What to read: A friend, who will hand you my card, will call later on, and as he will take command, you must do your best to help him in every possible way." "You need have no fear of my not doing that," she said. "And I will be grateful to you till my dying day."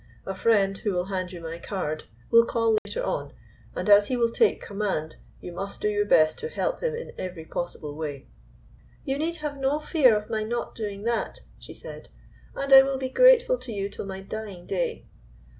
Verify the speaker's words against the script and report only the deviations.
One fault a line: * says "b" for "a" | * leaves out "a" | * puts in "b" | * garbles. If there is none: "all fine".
all fine